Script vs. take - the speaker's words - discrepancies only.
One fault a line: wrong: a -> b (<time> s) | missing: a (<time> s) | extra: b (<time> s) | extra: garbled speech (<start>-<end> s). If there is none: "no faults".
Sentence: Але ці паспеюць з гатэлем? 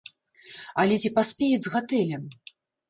no faults